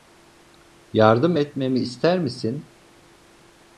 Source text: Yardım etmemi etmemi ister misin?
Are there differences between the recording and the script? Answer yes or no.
yes